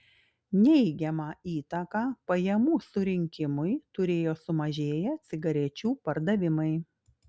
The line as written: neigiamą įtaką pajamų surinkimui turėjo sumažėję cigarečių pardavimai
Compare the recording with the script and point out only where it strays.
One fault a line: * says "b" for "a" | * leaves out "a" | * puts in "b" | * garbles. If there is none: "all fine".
all fine